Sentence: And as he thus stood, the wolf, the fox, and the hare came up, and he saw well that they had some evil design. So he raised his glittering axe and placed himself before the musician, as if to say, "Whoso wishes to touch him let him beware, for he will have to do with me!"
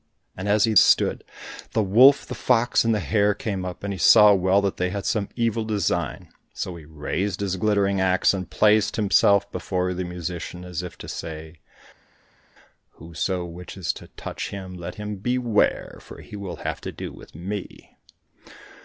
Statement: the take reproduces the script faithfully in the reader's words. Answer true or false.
false